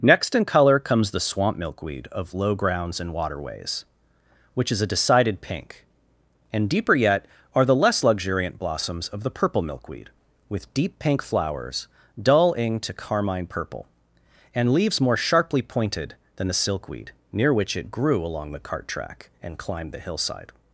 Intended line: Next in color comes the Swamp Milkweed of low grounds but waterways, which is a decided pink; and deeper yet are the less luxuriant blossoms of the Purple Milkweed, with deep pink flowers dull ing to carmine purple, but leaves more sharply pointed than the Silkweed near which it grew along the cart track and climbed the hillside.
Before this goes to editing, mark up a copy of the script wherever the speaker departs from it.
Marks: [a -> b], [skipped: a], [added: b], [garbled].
Next in color comes the Swamp Milkweed of low grounds [but -> and] waterways, which is a decided pink; and deeper yet are the less luxuriant blossoms of the Purple Milkweed, with deep pink flowers dull ing to carmine purple, [but -> and] leaves more sharply pointed than the Silkweed near which it grew along the cart track and climbed the hillside.